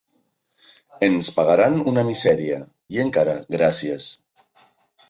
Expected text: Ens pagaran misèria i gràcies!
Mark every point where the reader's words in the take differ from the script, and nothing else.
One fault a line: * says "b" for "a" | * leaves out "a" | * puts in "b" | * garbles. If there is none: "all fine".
* puts in "una"
* puts in "encara"